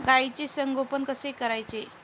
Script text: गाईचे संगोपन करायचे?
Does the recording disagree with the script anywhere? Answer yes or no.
yes